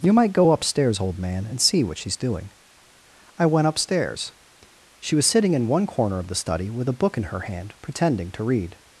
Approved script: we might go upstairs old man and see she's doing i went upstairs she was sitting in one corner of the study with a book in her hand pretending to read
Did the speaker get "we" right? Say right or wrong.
wrong